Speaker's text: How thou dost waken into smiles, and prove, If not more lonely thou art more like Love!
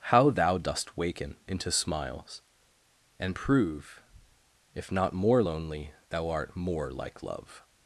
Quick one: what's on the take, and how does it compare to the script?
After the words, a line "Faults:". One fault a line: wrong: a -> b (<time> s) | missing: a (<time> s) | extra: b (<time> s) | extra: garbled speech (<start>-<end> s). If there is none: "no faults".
How thou dost waken into smiles, and prove, If not more lonely thou art more like Love!
Faults:
no faults